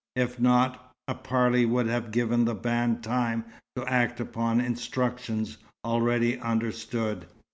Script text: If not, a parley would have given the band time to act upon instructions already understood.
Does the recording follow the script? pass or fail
pass